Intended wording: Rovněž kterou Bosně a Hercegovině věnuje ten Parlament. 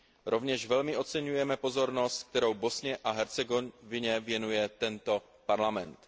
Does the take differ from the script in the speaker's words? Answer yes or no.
yes